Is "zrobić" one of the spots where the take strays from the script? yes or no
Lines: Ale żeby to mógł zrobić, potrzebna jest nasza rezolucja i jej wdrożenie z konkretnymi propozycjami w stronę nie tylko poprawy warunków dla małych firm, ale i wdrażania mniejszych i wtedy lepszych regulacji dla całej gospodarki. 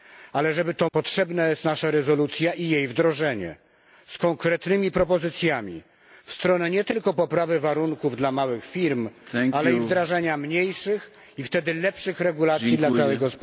yes